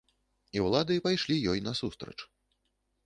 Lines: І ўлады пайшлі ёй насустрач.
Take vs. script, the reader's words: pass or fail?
pass